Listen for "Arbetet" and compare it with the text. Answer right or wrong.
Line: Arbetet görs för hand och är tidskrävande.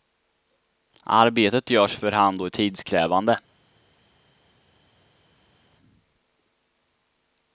right